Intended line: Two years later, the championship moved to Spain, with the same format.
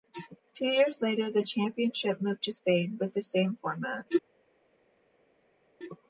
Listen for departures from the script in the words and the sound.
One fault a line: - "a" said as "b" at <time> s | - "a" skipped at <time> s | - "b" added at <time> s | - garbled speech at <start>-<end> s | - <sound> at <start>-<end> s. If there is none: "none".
none